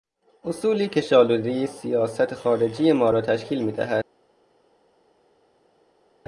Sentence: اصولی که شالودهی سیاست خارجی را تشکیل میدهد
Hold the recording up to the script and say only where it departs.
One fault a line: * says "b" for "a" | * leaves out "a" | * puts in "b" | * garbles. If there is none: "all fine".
* puts in "ما"